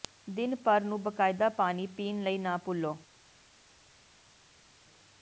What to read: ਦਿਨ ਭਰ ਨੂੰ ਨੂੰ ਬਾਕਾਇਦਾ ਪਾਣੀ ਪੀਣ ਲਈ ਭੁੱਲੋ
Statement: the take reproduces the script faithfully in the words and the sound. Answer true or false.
false